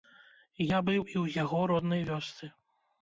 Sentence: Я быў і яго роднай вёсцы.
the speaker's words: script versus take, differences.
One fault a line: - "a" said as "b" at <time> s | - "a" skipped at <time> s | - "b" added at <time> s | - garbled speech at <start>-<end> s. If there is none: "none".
- "ў" added at 1.2 s